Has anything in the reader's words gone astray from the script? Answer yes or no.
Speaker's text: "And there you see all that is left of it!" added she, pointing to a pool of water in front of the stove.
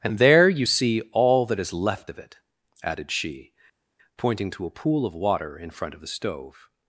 no